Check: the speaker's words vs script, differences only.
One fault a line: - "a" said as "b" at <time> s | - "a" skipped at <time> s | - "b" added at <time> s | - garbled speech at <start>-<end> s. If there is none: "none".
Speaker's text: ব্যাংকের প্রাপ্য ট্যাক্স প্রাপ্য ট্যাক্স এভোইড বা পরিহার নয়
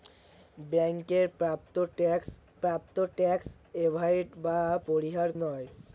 none